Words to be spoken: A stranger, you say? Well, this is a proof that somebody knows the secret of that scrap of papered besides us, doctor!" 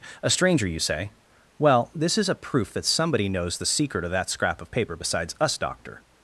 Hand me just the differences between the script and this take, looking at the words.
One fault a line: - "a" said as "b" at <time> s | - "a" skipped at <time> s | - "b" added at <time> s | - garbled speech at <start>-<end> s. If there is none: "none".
- "papered" said as "paper" at 4.7 s